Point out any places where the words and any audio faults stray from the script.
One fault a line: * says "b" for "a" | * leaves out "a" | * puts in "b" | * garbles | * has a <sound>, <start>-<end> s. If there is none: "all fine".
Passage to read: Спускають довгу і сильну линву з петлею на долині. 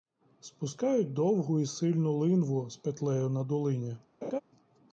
* has a laugh, 4.2-4.4 s